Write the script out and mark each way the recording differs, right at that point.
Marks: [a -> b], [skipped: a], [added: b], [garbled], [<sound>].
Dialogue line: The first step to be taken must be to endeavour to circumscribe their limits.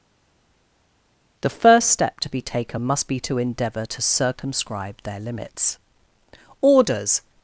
The first step to be taken must be to endeavour to circumscribe their limits. [added: Orders]